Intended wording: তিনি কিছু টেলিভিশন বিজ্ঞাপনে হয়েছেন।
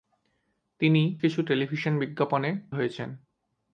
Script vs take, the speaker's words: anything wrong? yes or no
no